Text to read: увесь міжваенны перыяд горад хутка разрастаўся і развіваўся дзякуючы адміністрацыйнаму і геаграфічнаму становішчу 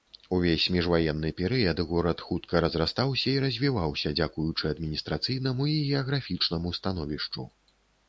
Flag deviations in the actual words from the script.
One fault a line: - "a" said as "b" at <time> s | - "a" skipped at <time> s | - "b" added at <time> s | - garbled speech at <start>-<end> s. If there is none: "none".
none